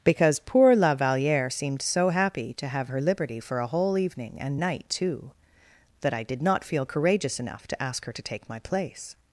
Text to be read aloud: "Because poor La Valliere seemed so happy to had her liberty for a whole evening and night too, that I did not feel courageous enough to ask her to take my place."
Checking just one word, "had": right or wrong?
wrong